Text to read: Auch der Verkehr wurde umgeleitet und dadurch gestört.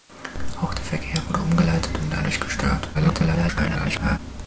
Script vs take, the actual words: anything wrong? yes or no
yes